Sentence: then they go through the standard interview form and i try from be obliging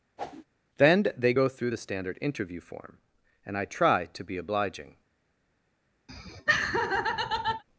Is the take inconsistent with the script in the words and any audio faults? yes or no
yes